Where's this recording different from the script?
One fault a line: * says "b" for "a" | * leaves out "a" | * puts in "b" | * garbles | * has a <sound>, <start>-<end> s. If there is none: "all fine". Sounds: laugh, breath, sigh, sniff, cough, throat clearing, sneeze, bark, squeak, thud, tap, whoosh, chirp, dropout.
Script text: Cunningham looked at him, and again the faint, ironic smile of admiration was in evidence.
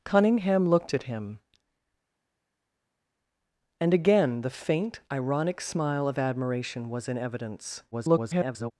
* garbles